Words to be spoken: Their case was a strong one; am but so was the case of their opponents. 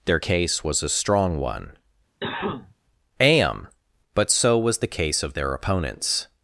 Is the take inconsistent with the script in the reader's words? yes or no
no